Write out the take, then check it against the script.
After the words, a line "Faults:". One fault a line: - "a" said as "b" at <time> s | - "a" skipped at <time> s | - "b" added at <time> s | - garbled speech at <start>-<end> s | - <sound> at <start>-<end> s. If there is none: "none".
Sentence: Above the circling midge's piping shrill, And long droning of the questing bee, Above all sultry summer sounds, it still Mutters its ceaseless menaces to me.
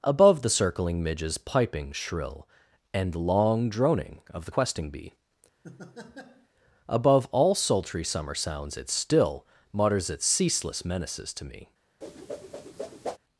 Above the circling midge's piping shrill, And long droning of the questing bee, Above all sultry summer sounds, it still Mutters its ceaseless menaces to me.
Faults:
- laugh at 5.6-6.5 s
- whoosh at 12.0-13.2 s